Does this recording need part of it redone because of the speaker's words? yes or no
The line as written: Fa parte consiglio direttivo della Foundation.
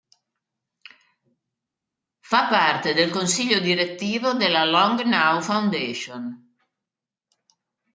yes